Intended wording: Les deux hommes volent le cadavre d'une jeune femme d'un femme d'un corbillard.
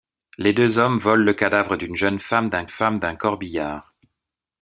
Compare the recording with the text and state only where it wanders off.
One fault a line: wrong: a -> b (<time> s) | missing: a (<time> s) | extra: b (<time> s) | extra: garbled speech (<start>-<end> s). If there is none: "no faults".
no faults